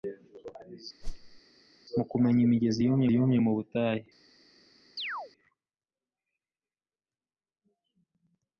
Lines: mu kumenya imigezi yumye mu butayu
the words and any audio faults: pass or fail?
fail